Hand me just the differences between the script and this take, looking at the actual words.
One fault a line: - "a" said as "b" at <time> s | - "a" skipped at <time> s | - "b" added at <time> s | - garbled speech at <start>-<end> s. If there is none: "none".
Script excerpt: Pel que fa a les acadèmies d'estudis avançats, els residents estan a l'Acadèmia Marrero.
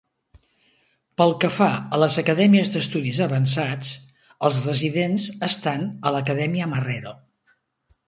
none